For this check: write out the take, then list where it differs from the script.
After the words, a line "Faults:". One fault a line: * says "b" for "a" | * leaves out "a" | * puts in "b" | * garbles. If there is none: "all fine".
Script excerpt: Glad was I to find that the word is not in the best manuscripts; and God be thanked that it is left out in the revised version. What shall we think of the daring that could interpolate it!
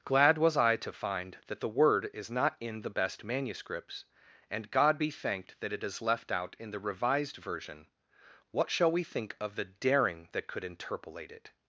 Glad was I to find that the word is not in the best manuscripts; and God be thanked that it is left out in the revised version. What shall we think of the daring that could interpolate it!
Faults:
all fine